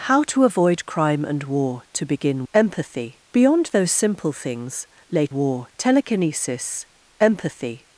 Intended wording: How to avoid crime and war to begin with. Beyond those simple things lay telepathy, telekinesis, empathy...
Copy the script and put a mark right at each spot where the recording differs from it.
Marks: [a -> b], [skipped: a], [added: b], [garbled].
How to avoid crime and war to begin [with. -> empathy] Beyond those simple things lay [telepathy, -> war] telekinesis, empathy...